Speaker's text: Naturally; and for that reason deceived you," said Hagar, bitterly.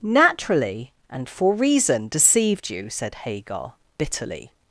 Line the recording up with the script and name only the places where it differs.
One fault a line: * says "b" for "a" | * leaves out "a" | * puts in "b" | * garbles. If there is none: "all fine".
* leaves out "that"